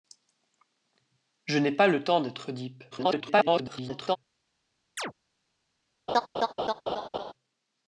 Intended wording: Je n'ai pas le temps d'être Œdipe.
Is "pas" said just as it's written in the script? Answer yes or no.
yes